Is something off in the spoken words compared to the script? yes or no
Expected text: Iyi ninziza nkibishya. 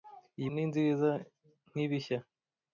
no